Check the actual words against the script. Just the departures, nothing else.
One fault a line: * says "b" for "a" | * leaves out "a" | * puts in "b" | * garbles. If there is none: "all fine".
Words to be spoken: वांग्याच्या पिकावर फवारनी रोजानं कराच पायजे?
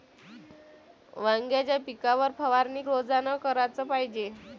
all fine